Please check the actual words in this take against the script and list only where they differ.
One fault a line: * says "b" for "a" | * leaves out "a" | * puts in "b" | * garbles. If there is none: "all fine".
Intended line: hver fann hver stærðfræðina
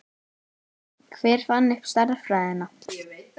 * says "upp" for "hver"